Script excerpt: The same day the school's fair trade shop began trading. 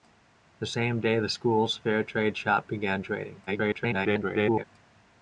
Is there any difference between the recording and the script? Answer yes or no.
yes